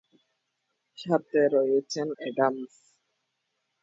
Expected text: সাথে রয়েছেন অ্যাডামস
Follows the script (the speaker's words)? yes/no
yes